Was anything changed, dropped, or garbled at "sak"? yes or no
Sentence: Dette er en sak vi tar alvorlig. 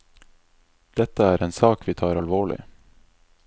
no